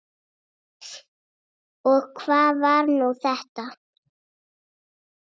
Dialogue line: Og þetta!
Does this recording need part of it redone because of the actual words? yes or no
yes